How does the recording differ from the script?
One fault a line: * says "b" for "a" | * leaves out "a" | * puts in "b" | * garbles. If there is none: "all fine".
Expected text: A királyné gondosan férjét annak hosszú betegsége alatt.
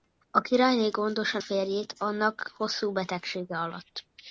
all fine